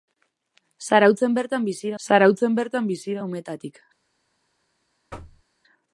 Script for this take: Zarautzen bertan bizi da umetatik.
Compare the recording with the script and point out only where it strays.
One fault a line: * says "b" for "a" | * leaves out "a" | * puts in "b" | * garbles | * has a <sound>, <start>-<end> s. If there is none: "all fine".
* puts in "zarautzen bertan bizi"
* has a thud, 5.1-5.4 s